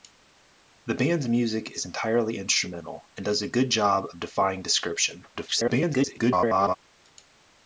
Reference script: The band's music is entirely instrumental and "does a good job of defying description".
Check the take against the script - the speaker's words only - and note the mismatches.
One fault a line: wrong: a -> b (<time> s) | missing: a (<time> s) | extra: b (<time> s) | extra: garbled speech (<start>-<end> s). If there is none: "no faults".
extra: garbled speech (5.3-6.8 s)